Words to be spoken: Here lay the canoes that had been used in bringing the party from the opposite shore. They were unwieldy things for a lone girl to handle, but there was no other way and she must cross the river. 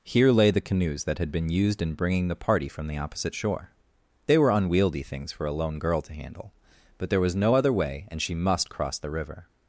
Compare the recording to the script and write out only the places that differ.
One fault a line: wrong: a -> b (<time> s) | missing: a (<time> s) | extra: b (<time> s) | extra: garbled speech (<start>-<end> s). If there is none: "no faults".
no faults